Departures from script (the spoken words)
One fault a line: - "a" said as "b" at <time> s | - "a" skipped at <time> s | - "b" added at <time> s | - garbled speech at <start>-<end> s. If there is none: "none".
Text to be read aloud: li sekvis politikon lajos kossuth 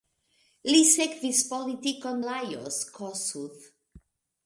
none